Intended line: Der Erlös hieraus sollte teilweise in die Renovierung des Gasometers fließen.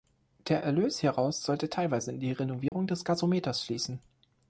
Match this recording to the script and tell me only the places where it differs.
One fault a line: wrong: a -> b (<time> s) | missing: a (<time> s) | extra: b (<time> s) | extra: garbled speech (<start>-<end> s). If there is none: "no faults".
no faults